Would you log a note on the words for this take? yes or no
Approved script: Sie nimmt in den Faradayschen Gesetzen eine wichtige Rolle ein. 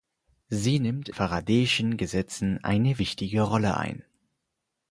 yes